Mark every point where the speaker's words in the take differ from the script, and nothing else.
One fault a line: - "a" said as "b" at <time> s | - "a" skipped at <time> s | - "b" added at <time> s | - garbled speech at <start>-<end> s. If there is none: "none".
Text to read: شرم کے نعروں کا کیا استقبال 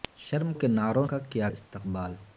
none